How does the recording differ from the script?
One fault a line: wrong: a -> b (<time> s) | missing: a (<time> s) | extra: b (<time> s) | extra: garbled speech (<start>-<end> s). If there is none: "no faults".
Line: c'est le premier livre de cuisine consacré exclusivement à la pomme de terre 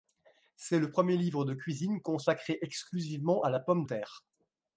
missing: de (3.8 s)